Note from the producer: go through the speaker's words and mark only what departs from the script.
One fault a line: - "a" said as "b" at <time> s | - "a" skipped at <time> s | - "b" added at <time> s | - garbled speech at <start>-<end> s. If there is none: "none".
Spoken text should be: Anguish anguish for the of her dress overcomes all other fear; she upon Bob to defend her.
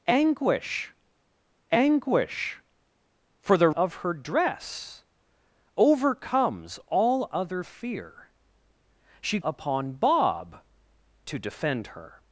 none